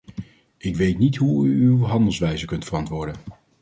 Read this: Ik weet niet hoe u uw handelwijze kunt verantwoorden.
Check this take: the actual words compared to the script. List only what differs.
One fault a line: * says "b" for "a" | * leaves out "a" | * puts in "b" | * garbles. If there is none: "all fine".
all fine